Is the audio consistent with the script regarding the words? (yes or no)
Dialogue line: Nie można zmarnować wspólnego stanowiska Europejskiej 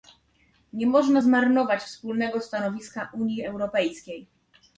no